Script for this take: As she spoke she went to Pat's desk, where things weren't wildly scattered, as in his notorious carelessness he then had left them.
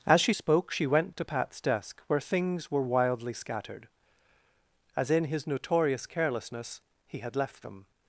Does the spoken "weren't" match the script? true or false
false